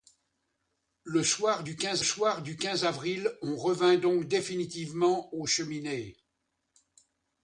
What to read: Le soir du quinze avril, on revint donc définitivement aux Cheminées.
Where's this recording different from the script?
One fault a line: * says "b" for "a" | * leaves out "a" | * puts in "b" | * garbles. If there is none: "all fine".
* puts in "soir du quinze"